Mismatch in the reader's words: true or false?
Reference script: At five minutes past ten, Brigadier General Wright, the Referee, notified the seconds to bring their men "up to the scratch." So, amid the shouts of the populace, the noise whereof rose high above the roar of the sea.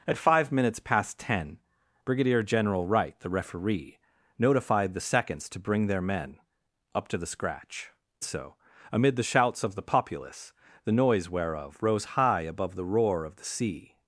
false